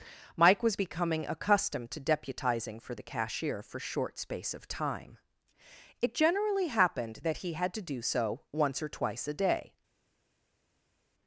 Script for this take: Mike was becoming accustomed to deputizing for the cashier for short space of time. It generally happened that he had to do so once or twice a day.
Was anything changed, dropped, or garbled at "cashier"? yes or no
no